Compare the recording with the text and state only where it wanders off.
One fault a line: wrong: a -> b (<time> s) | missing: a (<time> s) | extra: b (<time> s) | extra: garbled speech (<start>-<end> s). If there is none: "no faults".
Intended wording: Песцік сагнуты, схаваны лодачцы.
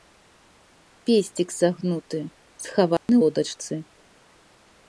no faults